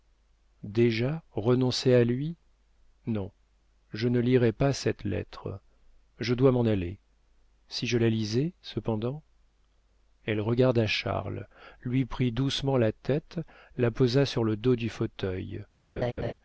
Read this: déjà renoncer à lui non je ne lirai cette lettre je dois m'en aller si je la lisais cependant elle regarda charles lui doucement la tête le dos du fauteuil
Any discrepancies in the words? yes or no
yes